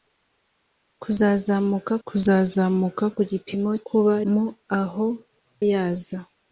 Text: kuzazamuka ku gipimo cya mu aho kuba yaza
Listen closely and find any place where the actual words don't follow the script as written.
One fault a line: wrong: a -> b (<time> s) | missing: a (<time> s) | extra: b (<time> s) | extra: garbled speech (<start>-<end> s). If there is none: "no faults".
extra: kuzazamuka (2.1 s)
wrong: cya -> kuba (3.9 s)
missing: kuba (5.1 s)